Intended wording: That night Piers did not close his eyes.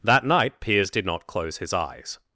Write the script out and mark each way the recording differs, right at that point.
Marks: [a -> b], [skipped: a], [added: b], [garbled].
That night Piers did not close his eyes.